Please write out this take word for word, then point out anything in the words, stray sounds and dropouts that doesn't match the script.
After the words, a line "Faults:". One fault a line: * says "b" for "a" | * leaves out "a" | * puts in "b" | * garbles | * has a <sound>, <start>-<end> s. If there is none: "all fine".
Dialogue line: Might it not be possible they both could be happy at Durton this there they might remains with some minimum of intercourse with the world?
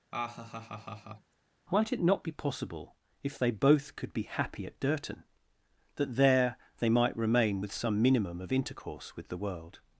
Might it not be possible if they both could be happy at Durton that there they might remain with some minimum of intercourse with the world?
Faults:
* has a laugh, 0.1-1.3 s
* puts in "if"
* says "that" for "this"
* says "remain" for "remains"